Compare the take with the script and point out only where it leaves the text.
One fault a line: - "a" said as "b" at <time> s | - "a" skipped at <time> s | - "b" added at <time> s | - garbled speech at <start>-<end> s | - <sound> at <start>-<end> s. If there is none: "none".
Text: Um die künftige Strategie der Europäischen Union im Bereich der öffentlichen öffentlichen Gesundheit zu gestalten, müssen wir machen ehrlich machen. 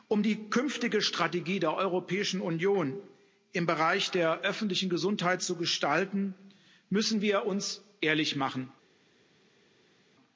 - "öffentlichen" skipped at 4.9 s
- "machen" said as "uns" at 7.5 s